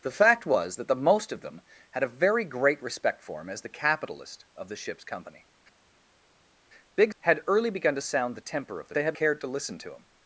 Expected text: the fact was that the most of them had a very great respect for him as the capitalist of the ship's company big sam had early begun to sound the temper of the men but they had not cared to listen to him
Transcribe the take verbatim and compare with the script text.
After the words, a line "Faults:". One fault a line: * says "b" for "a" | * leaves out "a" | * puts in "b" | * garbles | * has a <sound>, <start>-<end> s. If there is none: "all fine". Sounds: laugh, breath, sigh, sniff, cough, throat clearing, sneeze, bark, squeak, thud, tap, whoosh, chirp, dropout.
the fact was that the most of them had a very great respect for him as the capitalist of the ship's company big had early begun to sound the temper of the they had cared to listen to him
Faults:
* leaves out "sam"
* leaves out "men but"
* leaves out "not"